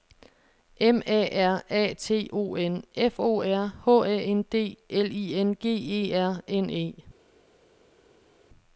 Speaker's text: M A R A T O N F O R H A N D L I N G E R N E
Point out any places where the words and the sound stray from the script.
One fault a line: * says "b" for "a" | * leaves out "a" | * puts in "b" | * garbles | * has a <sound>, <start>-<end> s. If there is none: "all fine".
all fine